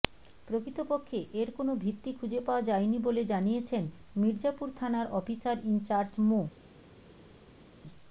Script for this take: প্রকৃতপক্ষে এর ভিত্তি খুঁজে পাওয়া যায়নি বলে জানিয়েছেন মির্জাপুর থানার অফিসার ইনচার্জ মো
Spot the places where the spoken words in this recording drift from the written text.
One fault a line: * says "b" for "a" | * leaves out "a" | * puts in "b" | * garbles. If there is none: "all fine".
* puts in "কোনো"